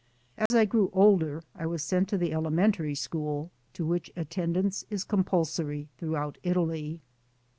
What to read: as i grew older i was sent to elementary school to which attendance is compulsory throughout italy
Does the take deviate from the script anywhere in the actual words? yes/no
yes